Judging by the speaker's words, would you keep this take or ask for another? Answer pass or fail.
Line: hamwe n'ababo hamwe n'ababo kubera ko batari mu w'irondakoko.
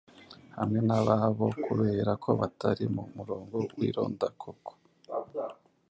fail